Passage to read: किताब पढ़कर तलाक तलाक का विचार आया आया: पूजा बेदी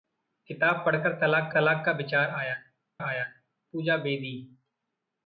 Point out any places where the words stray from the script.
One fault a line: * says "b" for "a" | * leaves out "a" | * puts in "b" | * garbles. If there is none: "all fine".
all fine